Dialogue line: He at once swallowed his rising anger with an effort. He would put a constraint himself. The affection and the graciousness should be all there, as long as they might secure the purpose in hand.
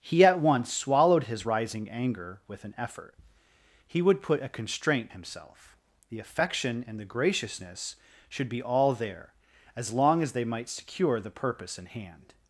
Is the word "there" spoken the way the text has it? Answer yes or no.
yes